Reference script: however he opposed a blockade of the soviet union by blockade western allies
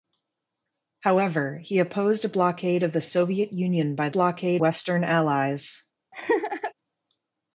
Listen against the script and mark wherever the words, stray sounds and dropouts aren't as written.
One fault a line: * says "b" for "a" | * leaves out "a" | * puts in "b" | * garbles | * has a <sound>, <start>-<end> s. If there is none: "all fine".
* has a laugh, 6.1-6.7 s